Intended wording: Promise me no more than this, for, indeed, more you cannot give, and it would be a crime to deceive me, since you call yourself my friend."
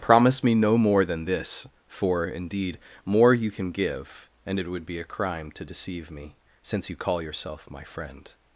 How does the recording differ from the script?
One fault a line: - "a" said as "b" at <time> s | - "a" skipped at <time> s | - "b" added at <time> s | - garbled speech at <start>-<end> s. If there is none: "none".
- "cannot" said as "can" at 3.5 s